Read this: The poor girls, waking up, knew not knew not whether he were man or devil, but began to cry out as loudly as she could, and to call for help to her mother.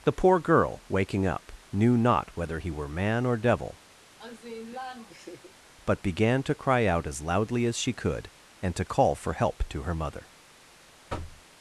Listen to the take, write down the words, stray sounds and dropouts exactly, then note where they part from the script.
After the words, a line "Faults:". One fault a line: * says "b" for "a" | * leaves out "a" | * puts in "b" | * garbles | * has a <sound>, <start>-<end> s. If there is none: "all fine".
The poor girl, waking up, knew not whether he were man or devil, but began to cry out as loudly as she could, and to call for help to her mother.
Faults:
* says "girl" for "girls"
* leaves out "knew not"
* has a laugh, 4.2-5.5 s
* has a thud, 11.1-11.4 s